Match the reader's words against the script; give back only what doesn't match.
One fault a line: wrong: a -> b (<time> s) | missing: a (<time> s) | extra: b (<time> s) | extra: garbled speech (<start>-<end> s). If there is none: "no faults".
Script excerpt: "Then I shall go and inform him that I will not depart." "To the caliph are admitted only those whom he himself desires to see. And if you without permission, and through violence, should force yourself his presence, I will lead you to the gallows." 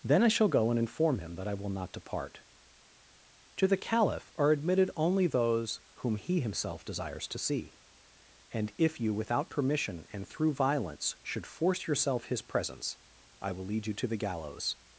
no faults